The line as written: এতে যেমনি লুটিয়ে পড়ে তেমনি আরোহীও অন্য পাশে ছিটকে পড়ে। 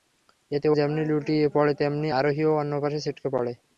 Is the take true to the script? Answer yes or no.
yes